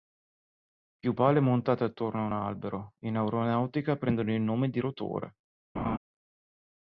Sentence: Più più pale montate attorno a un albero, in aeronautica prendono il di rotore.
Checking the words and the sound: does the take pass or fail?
fail